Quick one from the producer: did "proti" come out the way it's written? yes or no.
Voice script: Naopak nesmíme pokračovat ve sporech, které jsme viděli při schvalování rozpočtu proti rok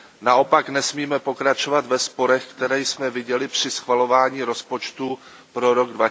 no